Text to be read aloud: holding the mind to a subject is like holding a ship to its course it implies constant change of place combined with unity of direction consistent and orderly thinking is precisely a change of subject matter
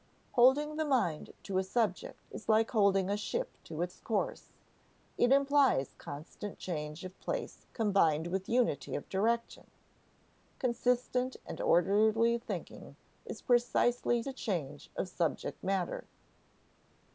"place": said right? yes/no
yes